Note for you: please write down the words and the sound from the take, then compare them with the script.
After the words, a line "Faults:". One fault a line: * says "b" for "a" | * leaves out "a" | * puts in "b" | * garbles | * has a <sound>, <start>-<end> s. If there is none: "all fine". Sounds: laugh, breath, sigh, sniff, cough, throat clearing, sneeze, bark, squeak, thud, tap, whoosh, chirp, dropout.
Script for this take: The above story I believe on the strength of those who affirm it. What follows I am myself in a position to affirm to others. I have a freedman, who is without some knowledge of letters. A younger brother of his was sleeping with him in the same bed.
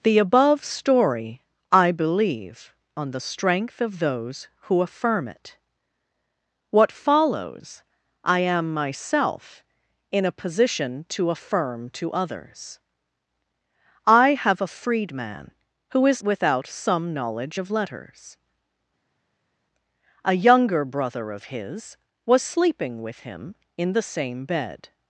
The above story I believe on the strength of those who affirm it. What follows I am myself in a position to affirm to others. I have a freedman, who is without some knowledge of letters. A younger brother of his was sleeping with him in the same bed.
Faults:
all fine